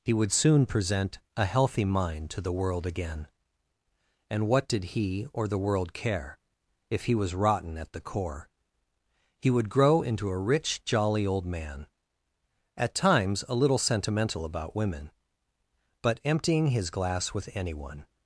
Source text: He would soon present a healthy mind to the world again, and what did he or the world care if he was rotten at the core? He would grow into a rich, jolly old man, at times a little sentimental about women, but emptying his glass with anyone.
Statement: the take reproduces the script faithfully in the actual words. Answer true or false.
true